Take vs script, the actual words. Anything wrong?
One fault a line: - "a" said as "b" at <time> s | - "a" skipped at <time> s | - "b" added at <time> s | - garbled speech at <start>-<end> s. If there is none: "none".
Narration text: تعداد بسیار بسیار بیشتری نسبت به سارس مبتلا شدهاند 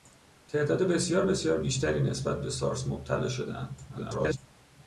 - garbled speech at 3.9-4.4 s